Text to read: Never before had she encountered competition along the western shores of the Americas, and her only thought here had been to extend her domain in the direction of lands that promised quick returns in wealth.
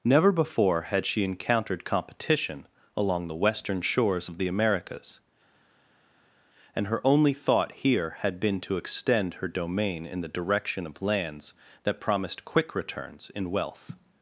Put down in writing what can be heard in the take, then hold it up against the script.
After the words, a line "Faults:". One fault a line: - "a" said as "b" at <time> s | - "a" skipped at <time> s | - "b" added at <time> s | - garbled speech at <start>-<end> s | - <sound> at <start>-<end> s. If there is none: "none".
Never before had she encountered competition along the western shores of the Americas, and her only thought here had been to extend her domain in the direction of lands that promised quick returns in wealth.
Faults:
none